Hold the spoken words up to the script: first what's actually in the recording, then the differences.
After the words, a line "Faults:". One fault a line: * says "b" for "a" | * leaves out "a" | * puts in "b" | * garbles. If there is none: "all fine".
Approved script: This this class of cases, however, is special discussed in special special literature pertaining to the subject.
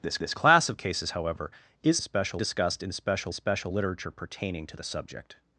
This this class of cases, however, is special discussed in special special literature pertaining to the subject.
Faults:
all fine